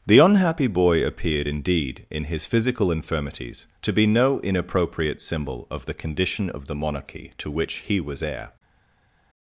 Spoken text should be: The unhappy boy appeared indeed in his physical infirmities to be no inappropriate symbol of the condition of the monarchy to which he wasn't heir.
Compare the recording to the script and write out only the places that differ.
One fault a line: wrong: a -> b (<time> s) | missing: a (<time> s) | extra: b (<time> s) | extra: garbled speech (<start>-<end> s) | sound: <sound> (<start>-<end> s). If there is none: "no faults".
wrong: wasn't -> was (8.0 s)